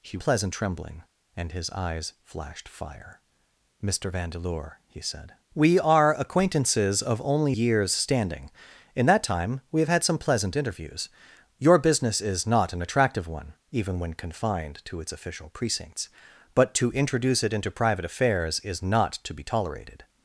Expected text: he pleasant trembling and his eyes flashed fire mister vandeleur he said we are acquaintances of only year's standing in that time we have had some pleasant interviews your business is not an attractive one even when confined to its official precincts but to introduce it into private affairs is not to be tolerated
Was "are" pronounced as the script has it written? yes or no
yes